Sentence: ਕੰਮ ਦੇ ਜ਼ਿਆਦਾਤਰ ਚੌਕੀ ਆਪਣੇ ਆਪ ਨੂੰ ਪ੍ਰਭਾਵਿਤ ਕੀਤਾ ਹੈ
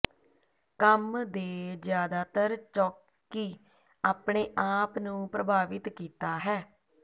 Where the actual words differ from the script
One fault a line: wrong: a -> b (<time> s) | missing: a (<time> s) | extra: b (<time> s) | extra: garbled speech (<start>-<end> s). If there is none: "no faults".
no faults